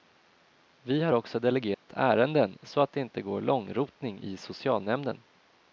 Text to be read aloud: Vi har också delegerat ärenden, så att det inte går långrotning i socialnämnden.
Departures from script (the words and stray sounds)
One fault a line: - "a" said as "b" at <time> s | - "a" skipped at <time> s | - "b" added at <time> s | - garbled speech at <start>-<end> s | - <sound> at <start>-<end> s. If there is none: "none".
- dropout at 1.7-1.9 s